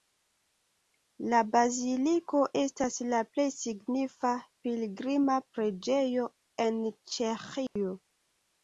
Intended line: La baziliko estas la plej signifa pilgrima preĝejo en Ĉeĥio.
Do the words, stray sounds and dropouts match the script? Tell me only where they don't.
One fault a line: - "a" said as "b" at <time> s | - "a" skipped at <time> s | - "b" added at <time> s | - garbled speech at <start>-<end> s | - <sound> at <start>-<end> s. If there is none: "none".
- dropout at 7.7-7.8 s